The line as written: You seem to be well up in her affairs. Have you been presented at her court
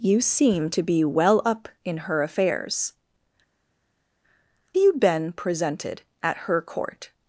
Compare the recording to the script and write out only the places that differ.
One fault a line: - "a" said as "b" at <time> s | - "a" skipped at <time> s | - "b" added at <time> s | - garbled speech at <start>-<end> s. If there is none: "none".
- "Have" skipped at 2.9 s